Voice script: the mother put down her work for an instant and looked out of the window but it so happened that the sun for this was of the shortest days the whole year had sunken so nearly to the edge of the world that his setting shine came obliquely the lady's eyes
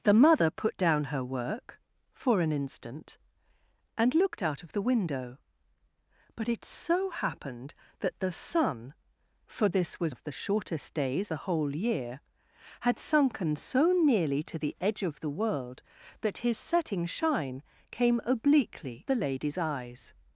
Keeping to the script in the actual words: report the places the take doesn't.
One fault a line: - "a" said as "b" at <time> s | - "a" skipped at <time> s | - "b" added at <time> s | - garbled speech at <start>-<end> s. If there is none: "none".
none